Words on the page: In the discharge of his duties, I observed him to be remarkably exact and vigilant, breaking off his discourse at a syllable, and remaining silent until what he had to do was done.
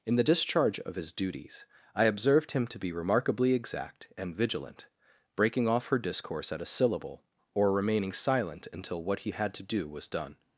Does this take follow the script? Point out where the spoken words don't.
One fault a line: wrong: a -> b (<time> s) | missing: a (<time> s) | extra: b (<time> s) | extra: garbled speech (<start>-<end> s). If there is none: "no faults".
wrong: his -> her (5.9 s)
wrong: and -> or (7.5 s)